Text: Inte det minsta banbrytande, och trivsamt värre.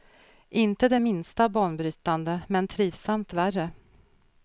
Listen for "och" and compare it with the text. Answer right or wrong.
wrong